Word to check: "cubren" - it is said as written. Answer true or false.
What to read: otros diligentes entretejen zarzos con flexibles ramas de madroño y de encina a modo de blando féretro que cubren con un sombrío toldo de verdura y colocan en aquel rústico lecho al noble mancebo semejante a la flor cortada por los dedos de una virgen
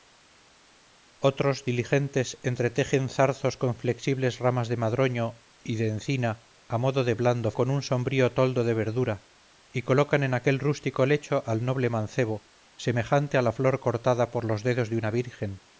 false